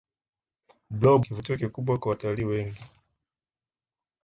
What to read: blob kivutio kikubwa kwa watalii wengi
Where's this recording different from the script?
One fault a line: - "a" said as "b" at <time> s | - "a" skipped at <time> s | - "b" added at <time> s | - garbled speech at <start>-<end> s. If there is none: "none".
none